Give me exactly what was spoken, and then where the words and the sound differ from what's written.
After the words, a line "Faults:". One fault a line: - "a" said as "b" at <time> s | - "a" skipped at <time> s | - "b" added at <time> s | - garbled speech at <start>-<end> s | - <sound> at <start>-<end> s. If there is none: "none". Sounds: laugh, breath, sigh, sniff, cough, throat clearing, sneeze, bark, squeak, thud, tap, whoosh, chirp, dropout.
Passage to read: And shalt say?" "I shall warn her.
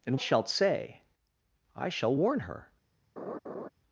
And shalt say?" "I shall warn her.
Faults:
- laugh at 3.2-3.7 s